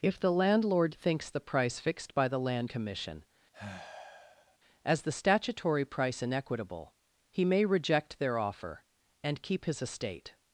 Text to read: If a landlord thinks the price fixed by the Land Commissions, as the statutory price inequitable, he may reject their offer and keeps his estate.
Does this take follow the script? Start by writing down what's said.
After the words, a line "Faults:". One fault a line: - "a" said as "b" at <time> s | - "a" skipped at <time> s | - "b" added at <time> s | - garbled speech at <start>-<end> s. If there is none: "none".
If the landlord thinks the price fixed by the Land Commission, as the statutory price inequitable, he may reject their offer and keep his estate.
Faults:
- "a" said as "the" at 0.2 s
- "Commissions" said as "Commission" at 2.7 s
- "keeps" said as "keep" at 9.4 s